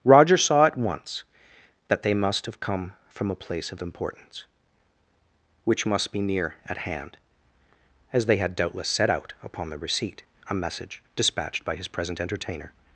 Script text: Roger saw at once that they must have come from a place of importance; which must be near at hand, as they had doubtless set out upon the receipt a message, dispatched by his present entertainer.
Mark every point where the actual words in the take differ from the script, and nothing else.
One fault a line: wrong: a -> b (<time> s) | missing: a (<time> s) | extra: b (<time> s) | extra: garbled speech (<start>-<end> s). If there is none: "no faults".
no faults